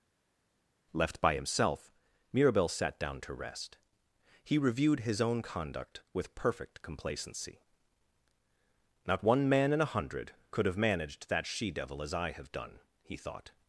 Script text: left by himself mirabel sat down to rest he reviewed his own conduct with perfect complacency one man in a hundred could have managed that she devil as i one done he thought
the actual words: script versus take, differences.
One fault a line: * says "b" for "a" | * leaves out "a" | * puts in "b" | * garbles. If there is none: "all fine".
* puts in "not"
* says "have" for "one"